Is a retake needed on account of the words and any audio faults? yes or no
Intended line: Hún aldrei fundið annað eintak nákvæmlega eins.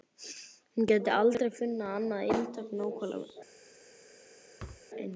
yes